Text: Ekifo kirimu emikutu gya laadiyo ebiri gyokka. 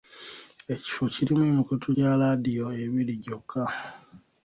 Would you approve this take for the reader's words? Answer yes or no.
yes